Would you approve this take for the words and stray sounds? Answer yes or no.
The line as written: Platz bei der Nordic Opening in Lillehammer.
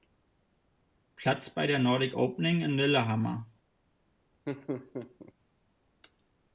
no